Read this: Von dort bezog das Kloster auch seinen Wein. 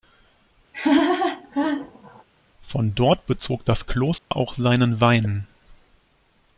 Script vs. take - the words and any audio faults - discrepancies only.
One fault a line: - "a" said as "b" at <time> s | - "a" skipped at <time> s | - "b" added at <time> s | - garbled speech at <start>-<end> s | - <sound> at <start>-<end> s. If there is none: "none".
- laugh at 0.7-2.2 s
- dropout at 4.2-4.3 s